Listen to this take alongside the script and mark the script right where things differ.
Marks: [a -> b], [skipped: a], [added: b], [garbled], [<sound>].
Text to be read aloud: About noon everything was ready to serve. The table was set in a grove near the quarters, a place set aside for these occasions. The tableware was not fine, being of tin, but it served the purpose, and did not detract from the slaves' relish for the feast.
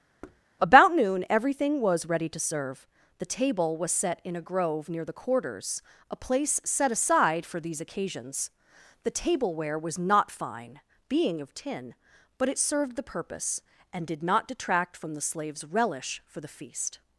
[thud] About noon everything was ready to serve. The table was set in a grove near the quarters, a place set aside for these occasions. The tableware was not fine, being of tin, but it served the purpose, and did not detract from the slaves' relish for the feast.